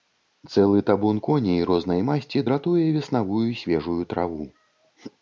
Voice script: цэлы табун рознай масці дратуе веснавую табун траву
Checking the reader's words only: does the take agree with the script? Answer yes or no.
no